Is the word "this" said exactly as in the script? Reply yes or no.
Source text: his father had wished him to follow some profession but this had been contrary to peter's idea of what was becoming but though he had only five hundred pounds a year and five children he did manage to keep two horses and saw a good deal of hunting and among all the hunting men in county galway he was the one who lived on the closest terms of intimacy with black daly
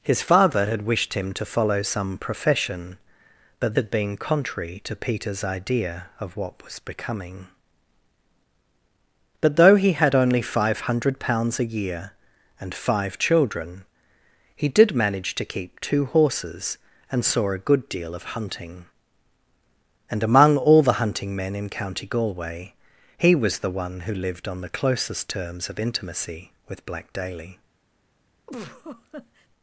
no